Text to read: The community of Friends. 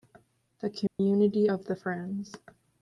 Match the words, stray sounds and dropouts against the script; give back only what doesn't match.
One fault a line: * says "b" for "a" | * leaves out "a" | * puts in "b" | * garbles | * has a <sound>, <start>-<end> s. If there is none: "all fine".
* has a dropout, 0.9-1.0 s
* puts in "the"